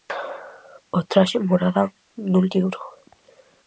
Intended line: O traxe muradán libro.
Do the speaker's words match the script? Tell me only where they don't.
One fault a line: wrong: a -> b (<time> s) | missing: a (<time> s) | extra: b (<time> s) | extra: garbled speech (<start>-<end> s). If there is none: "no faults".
extra: nun (2.3 s)